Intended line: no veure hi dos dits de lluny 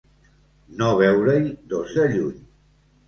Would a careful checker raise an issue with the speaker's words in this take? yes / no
yes